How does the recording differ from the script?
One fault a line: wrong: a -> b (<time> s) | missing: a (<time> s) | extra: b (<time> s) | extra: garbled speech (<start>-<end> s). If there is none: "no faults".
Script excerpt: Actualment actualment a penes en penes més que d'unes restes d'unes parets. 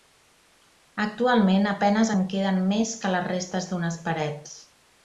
missing: actualment (1.7 s)
wrong: penes -> queden (2.4 s)
wrong: d'unes -> les (3.2 s)